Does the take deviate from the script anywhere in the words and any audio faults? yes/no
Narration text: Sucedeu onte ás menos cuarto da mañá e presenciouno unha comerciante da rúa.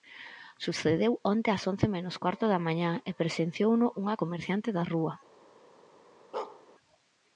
yes